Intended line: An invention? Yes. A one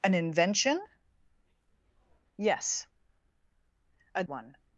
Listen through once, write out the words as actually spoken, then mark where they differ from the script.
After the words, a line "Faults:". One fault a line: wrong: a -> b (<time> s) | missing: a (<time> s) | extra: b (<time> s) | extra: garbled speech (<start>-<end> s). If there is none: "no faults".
An invention? Yes. A one
Faults:
no faults